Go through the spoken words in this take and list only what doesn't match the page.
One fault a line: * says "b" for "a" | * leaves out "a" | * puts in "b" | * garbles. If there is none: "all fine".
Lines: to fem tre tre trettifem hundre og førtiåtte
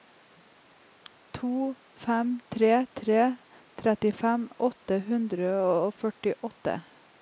* puts in "åtte"